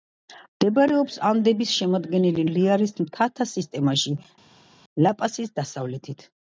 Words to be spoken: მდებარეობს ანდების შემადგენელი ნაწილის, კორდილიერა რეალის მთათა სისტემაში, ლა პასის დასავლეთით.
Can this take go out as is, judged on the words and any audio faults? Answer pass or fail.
fail